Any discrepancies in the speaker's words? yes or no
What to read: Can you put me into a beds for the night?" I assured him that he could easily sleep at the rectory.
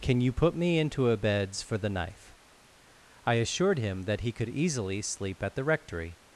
yes